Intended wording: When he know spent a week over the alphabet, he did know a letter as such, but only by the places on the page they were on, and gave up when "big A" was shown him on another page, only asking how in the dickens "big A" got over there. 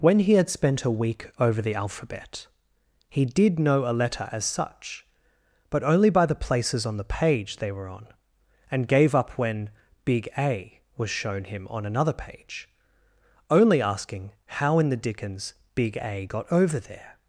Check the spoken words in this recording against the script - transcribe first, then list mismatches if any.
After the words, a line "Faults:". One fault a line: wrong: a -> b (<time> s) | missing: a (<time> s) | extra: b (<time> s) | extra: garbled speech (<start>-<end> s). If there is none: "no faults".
When he had spent a week over the alphabet, he did know a letter as such, but only by the places on the page they were on, and gave up when "big A" was shown him on another page, only asking how in the dickens "big A" got over there.
Faults:
wrong: know -> had (0.3 s)